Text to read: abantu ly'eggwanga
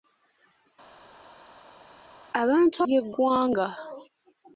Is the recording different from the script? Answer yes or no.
no